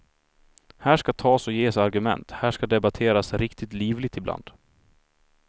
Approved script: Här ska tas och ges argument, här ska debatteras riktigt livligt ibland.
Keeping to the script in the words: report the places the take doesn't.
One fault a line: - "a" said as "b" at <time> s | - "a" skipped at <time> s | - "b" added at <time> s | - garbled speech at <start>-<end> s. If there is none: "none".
none